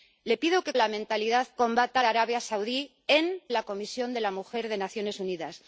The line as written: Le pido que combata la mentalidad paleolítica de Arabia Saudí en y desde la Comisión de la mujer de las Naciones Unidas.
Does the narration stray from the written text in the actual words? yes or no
yes